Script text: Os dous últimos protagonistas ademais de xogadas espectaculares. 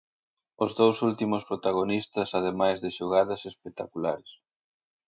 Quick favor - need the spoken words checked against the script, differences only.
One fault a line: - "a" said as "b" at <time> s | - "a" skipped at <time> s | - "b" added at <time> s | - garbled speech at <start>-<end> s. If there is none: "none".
none